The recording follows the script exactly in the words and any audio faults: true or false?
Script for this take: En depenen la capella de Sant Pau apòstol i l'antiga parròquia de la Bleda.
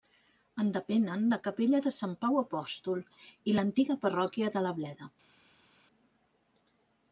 true